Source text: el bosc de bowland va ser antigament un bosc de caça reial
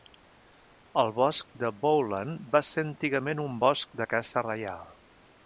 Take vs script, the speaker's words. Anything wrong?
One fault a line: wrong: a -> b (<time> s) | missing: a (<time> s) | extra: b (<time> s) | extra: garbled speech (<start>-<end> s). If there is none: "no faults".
no faults